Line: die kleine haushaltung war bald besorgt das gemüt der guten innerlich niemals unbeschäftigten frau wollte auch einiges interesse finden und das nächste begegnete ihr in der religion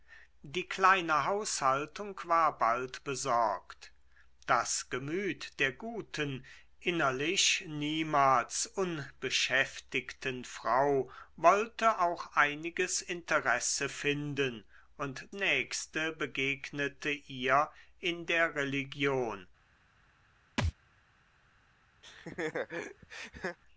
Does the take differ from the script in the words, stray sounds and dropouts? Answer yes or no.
yes